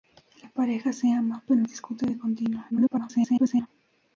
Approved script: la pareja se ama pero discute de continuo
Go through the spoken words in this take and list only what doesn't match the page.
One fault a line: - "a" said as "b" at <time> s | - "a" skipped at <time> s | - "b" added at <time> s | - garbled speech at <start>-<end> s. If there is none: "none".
- garbled speech at 2.7-3.7 s